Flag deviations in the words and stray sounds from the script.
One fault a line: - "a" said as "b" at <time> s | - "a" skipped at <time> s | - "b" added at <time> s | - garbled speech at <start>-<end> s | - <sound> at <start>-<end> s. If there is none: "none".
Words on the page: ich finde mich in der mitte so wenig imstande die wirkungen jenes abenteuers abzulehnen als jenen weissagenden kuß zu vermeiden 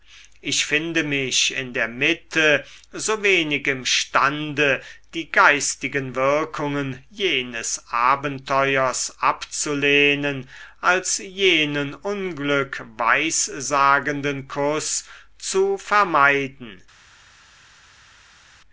- "geistigen" added at 5.3 s
- "unglück" added at 11.9 s